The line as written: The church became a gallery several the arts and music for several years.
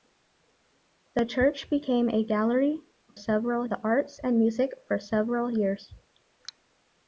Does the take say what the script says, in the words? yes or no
yes